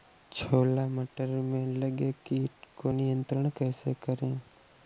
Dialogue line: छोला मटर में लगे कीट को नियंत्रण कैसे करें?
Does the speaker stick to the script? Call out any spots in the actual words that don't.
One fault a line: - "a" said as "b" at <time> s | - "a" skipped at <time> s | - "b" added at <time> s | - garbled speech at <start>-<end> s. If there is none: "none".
none